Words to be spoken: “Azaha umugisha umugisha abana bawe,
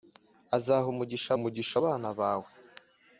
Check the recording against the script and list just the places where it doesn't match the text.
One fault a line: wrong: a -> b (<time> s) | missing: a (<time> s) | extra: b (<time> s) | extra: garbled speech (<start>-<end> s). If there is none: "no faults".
no faults